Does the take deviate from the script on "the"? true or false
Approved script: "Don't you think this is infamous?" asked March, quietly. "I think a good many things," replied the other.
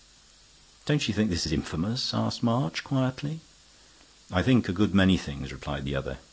false